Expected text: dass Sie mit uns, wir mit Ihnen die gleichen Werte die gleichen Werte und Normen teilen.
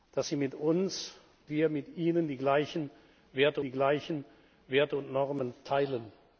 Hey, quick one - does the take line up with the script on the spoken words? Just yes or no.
yes